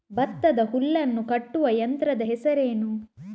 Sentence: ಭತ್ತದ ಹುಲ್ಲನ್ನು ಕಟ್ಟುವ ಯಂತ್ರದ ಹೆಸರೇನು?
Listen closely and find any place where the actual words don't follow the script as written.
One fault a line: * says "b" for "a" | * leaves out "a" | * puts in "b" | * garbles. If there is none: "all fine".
all fine